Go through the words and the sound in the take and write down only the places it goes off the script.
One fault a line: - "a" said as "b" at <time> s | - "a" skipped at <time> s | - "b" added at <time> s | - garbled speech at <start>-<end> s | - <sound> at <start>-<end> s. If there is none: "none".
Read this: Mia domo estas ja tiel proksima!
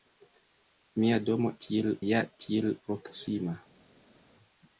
- "estas" said as "tiel" at 1.7 s